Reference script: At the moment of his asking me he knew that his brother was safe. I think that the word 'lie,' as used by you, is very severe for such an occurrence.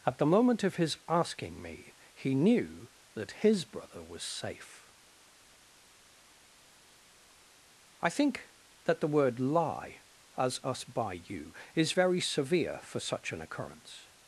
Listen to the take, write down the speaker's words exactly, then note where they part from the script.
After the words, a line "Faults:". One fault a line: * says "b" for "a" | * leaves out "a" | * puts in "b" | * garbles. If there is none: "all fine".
At the moment of his asking me he knew that his brother was safe. I think that the word 'lie,' as us by you, is very severe for such an occurrence.
Faults:
* says "us" for "used"